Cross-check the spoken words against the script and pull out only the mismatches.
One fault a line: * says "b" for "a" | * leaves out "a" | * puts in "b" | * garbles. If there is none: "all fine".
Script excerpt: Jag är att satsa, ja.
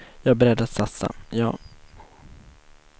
* puts in "beredd"